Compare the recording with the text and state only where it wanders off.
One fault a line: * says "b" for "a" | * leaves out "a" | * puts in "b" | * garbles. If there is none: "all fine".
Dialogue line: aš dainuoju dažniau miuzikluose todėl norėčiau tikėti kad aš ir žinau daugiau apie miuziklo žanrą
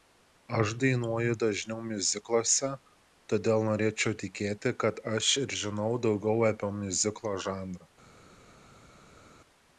all fine